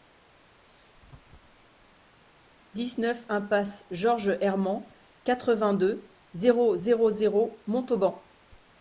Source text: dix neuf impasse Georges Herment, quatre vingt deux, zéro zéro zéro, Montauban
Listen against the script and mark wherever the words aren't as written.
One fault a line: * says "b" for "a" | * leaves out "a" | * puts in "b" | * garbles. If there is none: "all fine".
all fine